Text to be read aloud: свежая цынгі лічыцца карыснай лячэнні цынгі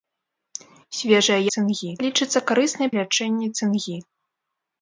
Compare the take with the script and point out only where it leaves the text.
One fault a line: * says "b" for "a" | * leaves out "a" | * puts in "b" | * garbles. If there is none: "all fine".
all fine